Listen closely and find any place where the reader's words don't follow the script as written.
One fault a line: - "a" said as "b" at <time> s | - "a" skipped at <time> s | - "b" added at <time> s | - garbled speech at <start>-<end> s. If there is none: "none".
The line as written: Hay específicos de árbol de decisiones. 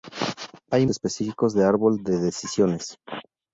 none